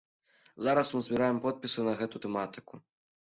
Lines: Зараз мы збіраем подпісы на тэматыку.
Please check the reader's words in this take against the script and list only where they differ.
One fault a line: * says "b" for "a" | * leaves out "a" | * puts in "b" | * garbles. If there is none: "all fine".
* puts in "гэту"